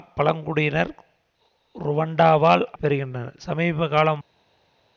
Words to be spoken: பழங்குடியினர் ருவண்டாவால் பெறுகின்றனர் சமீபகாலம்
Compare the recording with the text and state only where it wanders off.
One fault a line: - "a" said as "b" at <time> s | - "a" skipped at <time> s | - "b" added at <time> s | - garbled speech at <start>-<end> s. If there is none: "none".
none